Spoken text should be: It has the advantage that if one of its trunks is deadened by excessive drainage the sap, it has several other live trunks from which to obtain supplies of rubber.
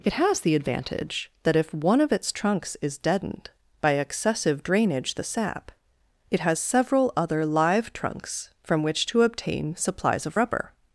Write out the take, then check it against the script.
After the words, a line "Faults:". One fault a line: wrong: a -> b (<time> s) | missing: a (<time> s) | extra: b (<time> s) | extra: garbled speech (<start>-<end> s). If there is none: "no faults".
It has the advantage that if one of its trunks is deadened by excessive drainage the sap, it has several other live trunks from which to obtain supplies of rubber.
Faults:
no faults